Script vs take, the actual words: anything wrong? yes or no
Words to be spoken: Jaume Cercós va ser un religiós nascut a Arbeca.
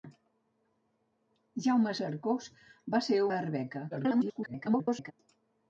yes